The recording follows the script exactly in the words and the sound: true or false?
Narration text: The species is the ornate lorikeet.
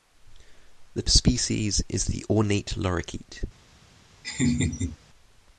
false